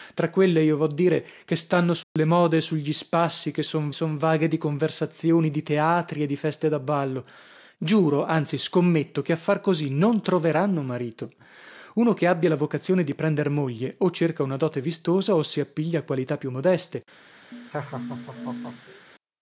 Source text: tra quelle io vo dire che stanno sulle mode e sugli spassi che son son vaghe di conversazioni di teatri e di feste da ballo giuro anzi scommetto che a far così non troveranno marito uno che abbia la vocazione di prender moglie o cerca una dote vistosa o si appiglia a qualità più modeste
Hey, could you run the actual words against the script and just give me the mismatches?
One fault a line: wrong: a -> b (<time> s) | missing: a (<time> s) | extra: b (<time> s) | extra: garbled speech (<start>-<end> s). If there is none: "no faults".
no faults